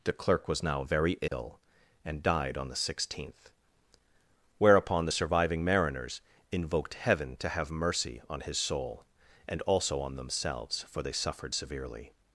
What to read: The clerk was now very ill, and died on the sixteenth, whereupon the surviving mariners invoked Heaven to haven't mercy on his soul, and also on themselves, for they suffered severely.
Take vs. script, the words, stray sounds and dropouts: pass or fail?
fail